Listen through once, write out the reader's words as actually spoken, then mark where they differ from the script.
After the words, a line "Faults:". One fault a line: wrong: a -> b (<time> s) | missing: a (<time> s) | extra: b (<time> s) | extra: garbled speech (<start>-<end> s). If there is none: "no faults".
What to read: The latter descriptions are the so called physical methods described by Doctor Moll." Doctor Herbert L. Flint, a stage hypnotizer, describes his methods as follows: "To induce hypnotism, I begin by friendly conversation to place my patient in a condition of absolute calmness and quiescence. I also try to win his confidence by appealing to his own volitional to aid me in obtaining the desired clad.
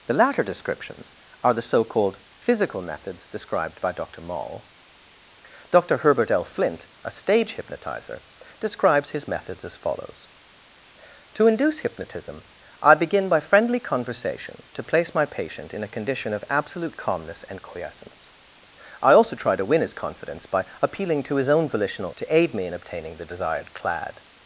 The latter descriptions are the so called physical methods described by Doctor Moll." Doctor Herbert L. Flint, a stage hypnotizer, describes his methods as follows: "To induce hypnotism, I begin by friendly conversation to place my patient in a condition of absolute calmness and quiescence. I also try to win his confidence by appealing to his own volitional to aid me in obtaining the desired clad.
Faults:
no faults